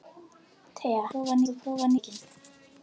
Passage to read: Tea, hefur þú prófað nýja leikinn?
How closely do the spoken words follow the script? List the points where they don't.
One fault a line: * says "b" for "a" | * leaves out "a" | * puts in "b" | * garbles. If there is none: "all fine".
* says "prófað" for "hefur"
* leaves out "nýja"